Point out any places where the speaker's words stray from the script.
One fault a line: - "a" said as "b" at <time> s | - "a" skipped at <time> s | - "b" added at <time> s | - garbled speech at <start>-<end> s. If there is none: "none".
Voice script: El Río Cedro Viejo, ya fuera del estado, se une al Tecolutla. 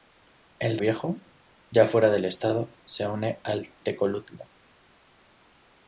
- "Río Cedro" skipped at 0.8 s